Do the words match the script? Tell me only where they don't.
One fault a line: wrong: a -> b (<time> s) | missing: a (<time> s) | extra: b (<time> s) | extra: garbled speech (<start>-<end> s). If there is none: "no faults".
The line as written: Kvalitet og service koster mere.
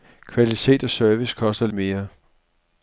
no faults